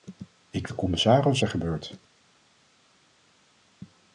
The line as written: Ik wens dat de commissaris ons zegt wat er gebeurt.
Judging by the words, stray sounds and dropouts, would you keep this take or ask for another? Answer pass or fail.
fail